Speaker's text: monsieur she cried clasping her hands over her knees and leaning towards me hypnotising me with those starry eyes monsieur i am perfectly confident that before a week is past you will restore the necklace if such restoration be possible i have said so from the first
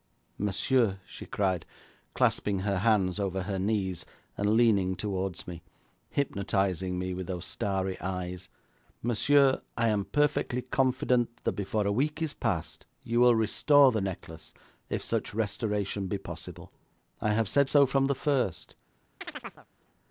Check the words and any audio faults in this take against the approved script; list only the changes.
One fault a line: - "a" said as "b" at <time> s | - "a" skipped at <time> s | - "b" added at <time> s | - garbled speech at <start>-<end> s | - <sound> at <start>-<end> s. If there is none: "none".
- chirp at 19.2-19.7 s